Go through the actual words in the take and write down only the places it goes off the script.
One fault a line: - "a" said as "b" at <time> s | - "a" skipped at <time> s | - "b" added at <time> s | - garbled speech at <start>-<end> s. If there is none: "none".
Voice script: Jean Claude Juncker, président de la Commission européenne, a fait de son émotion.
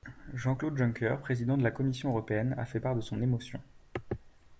- "part" added at 2.8 s